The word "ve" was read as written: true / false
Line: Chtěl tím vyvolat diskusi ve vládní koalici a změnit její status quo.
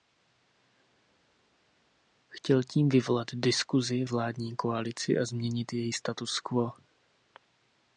false